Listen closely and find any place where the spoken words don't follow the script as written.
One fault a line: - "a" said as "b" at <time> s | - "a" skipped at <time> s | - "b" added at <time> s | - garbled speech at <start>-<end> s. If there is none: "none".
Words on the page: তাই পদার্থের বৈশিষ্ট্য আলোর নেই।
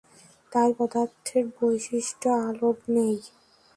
none